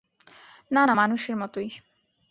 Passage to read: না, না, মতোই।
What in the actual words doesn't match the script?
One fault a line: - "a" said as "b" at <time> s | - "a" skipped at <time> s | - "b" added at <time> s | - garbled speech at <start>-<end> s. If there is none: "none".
- "মানুষের" added at 0.9 s